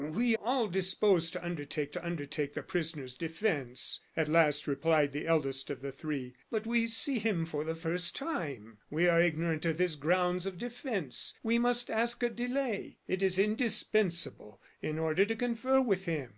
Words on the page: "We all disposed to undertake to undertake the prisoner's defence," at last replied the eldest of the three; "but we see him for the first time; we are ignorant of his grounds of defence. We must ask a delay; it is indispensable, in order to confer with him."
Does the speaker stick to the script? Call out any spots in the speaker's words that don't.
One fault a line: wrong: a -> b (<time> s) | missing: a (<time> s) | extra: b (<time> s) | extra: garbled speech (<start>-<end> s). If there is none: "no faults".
no faults